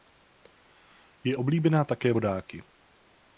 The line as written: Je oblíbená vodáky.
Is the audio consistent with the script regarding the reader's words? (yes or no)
no